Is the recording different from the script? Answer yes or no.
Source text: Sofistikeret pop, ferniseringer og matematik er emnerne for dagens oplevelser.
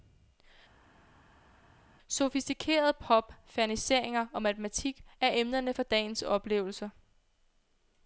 no